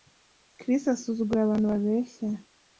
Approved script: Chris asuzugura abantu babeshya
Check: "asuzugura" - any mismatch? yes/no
no